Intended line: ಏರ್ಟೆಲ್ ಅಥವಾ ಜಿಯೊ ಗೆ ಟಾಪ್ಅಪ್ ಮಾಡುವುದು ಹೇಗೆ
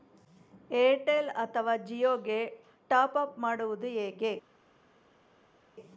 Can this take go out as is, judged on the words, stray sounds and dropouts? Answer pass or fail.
pass